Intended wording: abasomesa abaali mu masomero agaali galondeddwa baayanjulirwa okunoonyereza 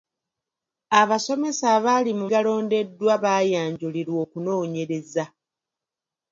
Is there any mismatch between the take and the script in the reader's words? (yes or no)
yes